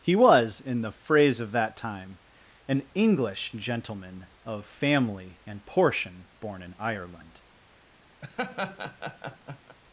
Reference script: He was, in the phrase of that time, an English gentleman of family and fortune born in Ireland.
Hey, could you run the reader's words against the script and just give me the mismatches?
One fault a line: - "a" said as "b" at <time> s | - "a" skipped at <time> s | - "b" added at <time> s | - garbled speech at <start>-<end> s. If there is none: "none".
- "fortune" said as "portion" at 5.7 s